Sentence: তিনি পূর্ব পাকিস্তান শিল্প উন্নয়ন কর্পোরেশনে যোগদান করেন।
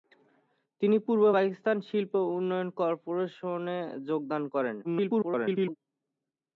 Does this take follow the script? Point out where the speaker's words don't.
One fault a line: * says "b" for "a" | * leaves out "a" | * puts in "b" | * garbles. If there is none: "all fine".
* garbles